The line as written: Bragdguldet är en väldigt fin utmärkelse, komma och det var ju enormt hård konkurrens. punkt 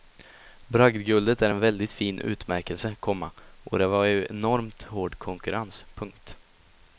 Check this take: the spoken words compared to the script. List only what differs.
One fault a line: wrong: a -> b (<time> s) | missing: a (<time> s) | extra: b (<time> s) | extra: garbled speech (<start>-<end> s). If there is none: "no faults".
no faults